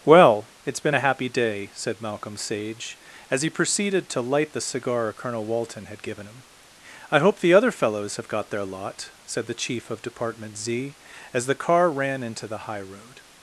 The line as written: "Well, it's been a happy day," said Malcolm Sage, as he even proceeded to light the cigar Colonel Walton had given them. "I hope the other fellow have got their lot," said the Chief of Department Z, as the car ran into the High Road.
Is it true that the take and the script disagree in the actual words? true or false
true